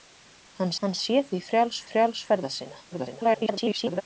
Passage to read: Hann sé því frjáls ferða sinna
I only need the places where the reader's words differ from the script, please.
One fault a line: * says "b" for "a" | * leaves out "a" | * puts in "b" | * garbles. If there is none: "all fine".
* puts in "hann"
* puts in "frjáls"
* garbles